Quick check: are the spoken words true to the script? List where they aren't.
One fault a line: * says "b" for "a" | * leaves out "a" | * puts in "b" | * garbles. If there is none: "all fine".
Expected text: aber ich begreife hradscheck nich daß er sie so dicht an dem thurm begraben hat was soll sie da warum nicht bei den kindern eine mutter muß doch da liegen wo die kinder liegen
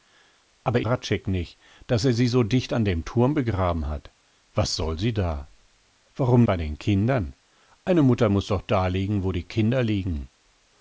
* leaves out "ich begreife"
* leaves out "nicht"